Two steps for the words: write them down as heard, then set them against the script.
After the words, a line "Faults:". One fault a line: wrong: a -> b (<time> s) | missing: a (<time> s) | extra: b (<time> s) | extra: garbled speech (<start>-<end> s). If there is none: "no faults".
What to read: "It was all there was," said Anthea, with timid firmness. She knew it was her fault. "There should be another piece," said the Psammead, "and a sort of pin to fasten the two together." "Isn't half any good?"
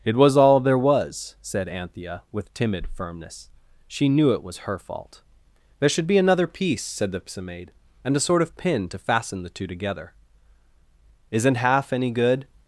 "It was all there was," said Anthea, with timid firmness. She knew it was her fault. "There should be another piece," said the Psammead, "and a sort of pin to fasten the two together." "Isn't half any good?"
Faults:
no faults